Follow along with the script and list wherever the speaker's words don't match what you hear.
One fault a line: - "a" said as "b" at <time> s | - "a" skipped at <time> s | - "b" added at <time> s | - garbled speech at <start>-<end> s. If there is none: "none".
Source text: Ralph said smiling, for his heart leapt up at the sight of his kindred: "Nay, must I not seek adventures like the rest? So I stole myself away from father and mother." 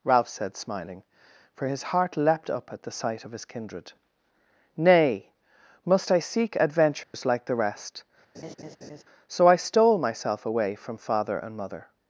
- "not" skipped at 6.2 s